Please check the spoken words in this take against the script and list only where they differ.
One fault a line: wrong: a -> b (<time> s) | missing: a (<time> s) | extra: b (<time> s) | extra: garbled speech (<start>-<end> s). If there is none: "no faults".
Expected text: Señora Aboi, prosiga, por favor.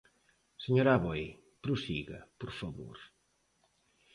no faults